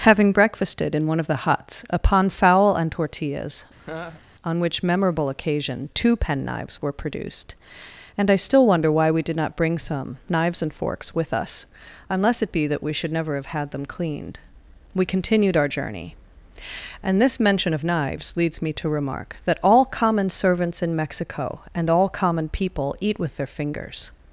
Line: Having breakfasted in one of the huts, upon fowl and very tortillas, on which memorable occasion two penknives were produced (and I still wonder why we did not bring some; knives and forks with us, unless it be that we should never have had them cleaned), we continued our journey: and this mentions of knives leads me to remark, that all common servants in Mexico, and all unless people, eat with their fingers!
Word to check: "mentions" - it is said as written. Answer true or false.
false